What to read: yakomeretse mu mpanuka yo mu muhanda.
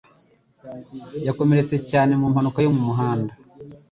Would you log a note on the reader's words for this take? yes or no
yes